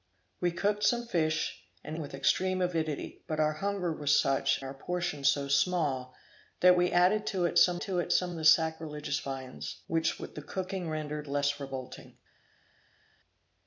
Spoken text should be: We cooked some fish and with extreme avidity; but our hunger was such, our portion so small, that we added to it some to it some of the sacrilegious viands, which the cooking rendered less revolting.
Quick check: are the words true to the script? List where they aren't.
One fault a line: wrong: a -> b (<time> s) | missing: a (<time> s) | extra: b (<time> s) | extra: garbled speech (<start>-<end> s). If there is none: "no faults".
no faults